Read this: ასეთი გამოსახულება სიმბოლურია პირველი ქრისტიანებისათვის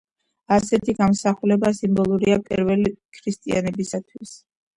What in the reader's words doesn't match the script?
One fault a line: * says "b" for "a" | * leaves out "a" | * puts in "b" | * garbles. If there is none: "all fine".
all fine